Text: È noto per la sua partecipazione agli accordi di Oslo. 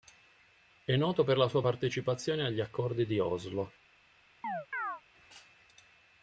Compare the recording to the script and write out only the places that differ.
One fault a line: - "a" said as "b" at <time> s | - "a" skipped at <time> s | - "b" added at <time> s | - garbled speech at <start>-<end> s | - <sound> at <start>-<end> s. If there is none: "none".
- chirp at 4.4-5.0 s